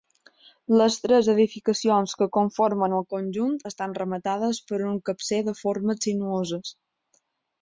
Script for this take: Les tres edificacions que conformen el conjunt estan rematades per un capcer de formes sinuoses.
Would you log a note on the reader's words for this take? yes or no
no